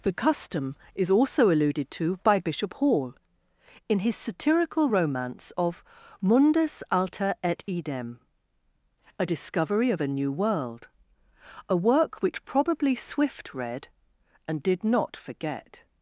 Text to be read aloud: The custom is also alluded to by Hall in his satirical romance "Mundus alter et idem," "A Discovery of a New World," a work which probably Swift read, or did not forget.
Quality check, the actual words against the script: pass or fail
fail